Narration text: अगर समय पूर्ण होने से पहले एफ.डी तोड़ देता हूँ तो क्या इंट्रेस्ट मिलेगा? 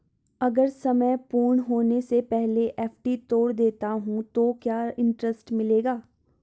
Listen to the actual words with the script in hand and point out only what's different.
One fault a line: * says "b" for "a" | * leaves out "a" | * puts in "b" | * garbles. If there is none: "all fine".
all fine